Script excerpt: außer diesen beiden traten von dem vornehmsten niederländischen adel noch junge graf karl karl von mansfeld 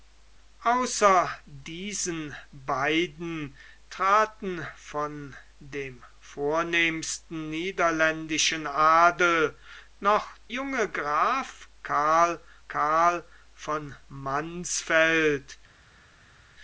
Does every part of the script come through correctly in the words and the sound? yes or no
yes